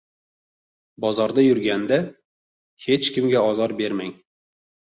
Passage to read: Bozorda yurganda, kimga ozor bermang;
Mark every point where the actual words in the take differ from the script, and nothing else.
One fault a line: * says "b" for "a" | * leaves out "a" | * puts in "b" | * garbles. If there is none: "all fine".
* puts in "hech"